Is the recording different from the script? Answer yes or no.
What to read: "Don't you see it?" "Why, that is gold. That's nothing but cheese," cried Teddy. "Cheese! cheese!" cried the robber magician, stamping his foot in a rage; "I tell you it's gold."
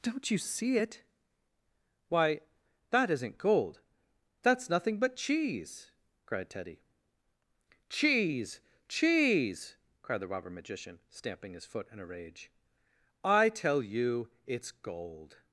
yes